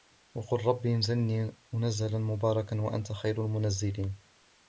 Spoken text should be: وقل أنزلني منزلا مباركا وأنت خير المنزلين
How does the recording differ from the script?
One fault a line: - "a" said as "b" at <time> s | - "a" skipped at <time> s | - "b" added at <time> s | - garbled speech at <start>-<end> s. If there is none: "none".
- "رب" added at 0.7 s